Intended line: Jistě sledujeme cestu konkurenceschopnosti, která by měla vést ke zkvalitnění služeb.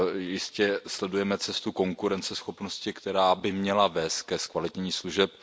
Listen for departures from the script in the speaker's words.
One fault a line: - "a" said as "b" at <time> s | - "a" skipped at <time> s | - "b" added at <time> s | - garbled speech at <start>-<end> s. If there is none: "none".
none